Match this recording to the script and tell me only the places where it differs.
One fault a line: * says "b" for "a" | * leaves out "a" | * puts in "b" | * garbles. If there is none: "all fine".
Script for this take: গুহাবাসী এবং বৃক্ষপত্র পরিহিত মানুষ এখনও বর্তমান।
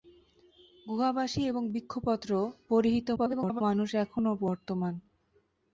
* garbles